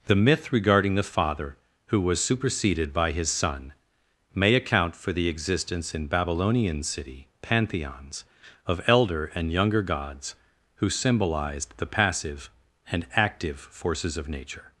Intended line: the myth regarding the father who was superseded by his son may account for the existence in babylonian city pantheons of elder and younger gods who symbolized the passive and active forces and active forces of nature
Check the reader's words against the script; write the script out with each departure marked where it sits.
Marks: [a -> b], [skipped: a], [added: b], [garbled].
the myth regarding the father who was superseded by his son may account for the existence in babylonian city pantheons of elder and younger gods who symbolized the passive and active forces [skipped: and active forces] of nature